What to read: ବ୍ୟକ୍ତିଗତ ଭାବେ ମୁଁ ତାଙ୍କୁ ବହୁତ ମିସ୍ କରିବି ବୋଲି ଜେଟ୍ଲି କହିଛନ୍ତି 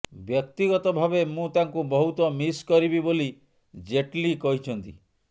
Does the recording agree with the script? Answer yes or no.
yes